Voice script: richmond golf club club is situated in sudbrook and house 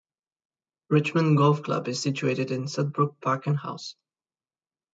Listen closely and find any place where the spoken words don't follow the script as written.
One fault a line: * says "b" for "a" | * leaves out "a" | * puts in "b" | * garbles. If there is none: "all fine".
* leaves out "club"
* puts in "park"